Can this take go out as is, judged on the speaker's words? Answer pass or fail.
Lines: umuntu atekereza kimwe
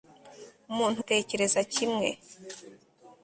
pass